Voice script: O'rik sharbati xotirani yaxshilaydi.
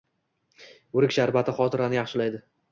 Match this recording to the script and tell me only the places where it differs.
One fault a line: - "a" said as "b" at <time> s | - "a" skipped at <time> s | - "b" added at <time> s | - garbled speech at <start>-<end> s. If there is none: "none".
none